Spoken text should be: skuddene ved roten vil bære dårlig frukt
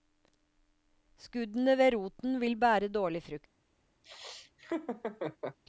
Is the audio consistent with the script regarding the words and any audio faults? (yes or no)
no